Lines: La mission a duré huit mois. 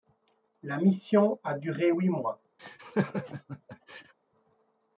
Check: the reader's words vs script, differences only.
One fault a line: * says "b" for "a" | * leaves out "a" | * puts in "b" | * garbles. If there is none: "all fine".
all fine